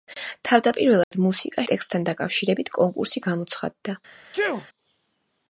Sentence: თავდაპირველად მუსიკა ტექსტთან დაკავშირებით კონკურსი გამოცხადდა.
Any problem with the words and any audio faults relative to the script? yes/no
yes